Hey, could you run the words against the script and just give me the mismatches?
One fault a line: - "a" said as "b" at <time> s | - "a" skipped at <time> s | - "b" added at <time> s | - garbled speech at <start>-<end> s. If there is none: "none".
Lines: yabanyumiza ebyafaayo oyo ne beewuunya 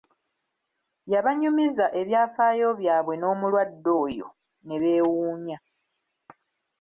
- "byabwe n'omulwadde" added at 2.8 s